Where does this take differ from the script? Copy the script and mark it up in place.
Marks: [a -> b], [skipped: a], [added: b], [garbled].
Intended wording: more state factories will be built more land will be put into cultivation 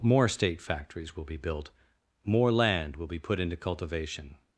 more state factories will be built more land will be put into cultivation